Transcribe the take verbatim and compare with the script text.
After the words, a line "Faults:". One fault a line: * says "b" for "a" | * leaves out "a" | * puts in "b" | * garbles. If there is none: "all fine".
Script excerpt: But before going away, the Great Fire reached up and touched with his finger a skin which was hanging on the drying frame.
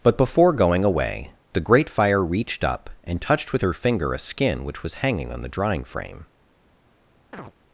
But before going away, the Great Fire reached up and touched with her finger a skin which was hanging on the drying frame.
Faults:
* says "her" for "his"